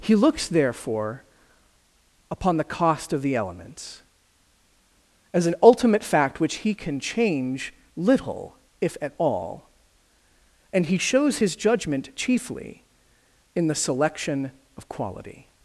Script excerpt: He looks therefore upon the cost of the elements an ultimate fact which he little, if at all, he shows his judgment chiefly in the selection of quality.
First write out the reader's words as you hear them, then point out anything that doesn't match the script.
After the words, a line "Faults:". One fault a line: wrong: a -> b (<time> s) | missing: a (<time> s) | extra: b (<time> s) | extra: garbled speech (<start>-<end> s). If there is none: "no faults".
He looks therefore upon the cost of the elements as an ultimate fact which he can change little, if at all, and he shows his judgment chiefly in the selection of quality.
Faults:
extra: as (5.3 s)
extra: can change (6.7 s)
extra: and (10.7 s)